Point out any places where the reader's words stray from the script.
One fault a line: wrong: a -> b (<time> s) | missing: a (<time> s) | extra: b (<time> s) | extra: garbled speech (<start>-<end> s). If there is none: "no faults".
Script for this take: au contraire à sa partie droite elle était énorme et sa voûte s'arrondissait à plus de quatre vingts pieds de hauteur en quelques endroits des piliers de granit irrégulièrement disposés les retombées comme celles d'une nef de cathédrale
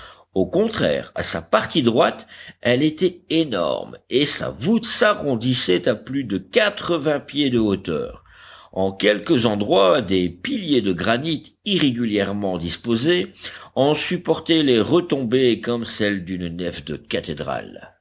extra: en supportaient (13.8 s)